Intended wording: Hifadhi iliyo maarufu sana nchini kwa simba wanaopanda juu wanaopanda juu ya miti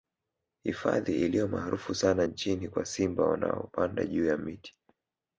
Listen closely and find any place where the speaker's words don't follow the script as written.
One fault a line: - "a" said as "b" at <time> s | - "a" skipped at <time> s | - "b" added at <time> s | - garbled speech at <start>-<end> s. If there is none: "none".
- "wanaopanda juu" skipped at 4.2 s